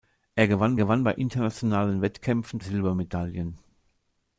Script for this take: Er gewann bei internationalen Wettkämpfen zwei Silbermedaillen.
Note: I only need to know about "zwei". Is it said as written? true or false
false